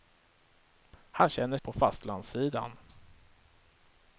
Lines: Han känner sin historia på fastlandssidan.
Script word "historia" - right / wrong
wrong